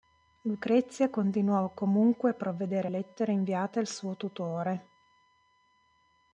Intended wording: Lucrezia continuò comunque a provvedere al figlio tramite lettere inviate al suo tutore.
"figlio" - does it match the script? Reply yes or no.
no